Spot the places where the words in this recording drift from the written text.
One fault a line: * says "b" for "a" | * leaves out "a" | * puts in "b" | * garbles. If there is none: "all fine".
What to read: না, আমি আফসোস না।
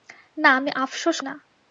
all fine